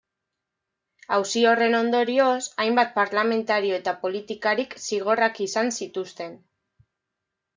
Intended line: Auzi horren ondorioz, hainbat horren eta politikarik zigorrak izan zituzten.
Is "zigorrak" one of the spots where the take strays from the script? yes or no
no